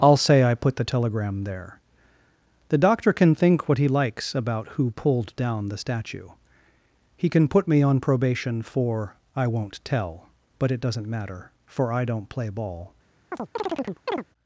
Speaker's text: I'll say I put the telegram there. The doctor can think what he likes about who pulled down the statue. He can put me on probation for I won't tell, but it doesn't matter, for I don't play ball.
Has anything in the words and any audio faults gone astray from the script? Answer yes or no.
yes